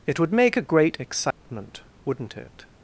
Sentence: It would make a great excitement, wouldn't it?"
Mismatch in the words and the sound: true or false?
true